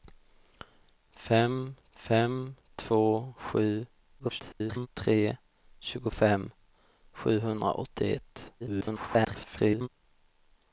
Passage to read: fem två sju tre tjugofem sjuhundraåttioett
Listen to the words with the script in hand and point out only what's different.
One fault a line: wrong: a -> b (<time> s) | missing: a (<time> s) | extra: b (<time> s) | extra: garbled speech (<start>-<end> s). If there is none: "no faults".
extra: fem (1.9 s)
extra: garbled speech (4.2-4.9 s)
extra: garbled speech (8.6-9.9 s)